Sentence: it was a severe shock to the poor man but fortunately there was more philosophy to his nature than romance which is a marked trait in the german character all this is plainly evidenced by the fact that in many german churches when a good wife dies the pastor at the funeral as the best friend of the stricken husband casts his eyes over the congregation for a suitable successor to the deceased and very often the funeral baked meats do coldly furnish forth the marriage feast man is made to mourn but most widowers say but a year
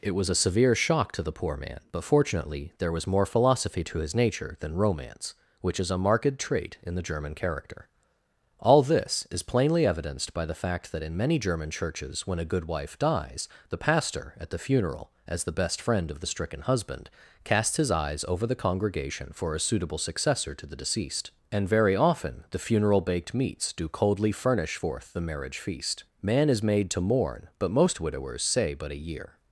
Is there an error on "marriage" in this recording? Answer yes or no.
no